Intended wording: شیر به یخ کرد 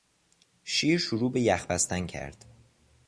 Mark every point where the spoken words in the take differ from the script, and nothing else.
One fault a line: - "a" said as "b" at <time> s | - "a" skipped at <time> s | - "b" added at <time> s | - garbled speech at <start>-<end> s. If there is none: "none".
- "شروع" added at 1.0 s
- "بستن" added at 1.7 s